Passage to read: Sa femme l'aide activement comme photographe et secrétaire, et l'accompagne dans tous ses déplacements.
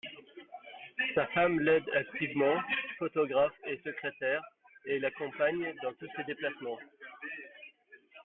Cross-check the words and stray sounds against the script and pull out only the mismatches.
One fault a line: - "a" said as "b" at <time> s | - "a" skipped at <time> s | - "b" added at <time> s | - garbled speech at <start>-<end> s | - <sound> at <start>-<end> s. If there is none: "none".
- "comme" skipped at 2.6 s